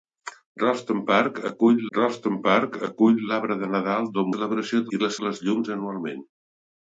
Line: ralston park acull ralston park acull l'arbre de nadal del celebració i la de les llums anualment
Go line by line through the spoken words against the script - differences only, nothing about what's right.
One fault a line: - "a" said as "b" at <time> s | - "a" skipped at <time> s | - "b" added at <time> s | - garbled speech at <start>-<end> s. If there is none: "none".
none